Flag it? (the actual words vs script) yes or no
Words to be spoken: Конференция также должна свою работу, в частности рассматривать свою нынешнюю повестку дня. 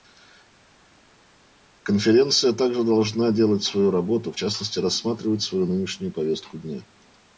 yes